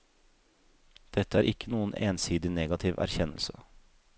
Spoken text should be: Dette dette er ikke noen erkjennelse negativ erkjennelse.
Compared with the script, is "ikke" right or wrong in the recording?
right